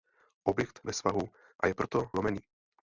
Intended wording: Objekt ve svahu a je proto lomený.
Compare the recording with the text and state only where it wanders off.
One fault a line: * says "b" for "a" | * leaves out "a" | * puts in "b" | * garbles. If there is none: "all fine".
all fine